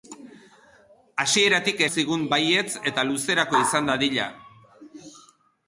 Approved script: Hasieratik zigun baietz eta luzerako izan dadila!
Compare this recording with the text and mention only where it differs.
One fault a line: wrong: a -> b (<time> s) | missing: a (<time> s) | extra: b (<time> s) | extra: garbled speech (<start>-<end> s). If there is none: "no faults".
no faults